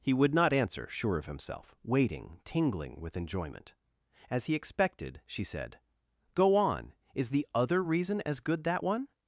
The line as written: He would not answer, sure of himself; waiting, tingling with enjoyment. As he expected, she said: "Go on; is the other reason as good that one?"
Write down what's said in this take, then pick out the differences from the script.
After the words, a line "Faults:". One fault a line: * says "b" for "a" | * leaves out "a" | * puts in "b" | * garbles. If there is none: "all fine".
He would not answer, sure of himself; waiting, tingling with enjoyment. As he expected, she said: "Go on; is the other reason as good that one?"
Faults:
all fine